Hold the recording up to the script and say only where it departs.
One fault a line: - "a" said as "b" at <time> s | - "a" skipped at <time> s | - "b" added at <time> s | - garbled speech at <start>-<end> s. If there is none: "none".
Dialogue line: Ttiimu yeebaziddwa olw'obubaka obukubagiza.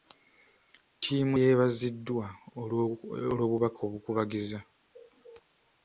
none